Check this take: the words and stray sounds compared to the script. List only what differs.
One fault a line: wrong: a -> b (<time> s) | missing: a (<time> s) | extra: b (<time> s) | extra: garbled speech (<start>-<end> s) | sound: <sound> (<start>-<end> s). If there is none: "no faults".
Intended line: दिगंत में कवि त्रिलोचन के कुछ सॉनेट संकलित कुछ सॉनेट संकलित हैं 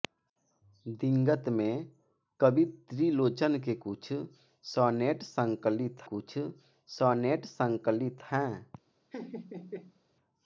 sound: laugh (9.1-10.0 s)